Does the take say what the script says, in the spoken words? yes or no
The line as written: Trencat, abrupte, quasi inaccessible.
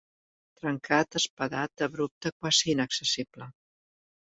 no